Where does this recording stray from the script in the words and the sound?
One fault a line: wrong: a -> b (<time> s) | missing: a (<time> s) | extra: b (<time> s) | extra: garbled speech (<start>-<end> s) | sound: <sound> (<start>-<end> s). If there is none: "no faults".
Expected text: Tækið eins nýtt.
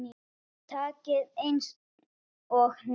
extra: og (2.6 s)